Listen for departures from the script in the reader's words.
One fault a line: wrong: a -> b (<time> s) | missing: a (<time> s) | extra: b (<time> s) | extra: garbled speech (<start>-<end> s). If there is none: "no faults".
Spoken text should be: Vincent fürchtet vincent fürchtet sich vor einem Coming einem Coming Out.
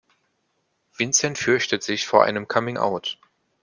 missing: vincent fürchtet (1.8 s)
missing: einem Coming (2.8 s)